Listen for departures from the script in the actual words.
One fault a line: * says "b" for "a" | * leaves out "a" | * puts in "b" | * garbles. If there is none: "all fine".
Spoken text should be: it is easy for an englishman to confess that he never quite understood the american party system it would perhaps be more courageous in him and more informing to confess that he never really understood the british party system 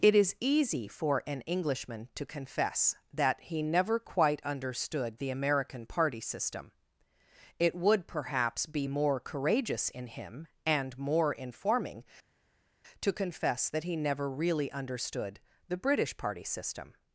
all fine